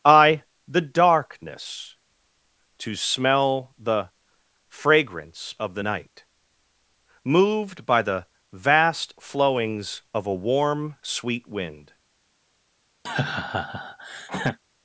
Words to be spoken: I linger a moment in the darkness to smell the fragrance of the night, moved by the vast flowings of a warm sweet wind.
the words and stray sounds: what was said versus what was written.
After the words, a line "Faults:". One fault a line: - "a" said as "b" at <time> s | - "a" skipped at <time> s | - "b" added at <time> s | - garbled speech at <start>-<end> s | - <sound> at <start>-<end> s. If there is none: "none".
I the darkness to smell the fragrance of the night, moved by the vast flowings of a warm sweet wind.
Faults:
- "linger a moment in" skipped at 0.4 s
- laugh at 13.1-14.6 s